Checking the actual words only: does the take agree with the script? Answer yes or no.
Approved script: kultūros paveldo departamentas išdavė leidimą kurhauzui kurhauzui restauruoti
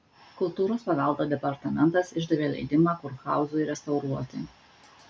no